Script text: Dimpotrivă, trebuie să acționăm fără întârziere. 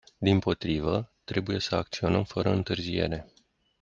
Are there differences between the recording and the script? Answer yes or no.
no